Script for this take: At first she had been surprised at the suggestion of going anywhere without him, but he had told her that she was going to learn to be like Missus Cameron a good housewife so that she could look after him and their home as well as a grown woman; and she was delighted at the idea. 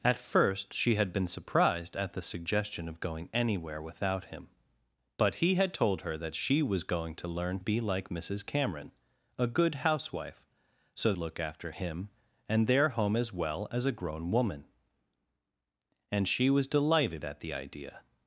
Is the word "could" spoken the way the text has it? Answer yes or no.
no